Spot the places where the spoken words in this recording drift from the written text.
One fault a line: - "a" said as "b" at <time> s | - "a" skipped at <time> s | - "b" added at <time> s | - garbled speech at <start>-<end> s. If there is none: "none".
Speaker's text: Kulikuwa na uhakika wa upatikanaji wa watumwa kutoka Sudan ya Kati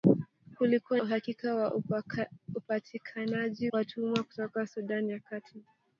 - "na" skipped at 1.0 s
- "wa" skipped at 3.7 s